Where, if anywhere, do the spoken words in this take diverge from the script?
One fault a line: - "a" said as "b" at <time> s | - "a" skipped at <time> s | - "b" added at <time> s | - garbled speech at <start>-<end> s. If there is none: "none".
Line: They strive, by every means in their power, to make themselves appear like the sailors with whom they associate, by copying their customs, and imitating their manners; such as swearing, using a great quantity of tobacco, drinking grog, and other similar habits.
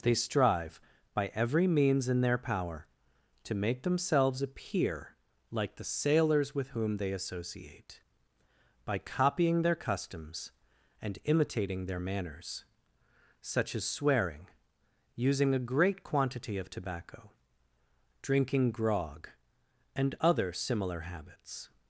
none